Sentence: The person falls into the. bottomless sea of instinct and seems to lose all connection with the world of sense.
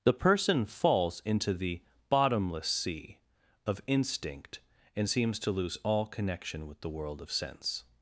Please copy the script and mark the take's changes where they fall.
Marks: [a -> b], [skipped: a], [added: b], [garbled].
The person falls into the. bottomless sea of instinct and seems to lose all connection with the world of sense.